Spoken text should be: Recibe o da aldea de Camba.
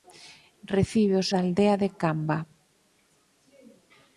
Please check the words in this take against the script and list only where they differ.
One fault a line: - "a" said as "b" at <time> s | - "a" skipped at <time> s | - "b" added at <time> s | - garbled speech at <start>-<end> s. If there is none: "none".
none